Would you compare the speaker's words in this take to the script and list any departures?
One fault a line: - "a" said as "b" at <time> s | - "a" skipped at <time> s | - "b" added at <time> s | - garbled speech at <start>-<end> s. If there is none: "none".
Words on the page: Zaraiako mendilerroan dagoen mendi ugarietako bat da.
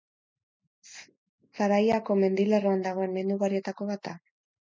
none